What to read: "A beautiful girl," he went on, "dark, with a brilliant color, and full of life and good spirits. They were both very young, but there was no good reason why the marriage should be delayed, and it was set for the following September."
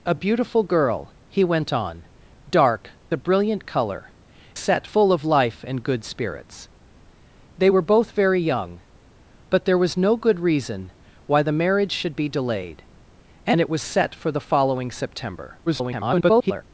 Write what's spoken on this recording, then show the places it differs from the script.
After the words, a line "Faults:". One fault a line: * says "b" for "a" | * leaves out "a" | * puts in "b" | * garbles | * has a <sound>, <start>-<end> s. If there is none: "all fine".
"A beautiful girl," he went on, "dark, a brilliant color, set full of life and good spirits. They were both very young, but there was no good reason why the marriage should be delayed, and it was set for the following September." [garbled]
Faults:
* leaves out "with"
* says "set" for "and"
* garbles